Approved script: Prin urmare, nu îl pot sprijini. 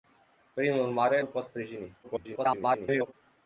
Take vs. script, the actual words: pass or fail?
fail